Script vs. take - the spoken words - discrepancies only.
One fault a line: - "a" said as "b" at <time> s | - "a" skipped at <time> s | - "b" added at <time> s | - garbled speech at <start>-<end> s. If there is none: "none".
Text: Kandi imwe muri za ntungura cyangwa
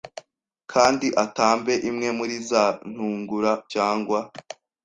- "atambe" added at 1.2 s